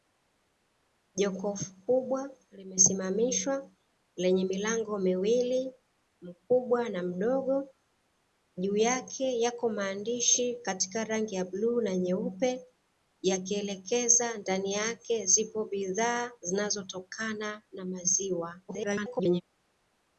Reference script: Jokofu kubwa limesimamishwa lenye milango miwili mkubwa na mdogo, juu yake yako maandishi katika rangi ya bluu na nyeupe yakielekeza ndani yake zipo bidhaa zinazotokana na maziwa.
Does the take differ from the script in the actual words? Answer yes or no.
yes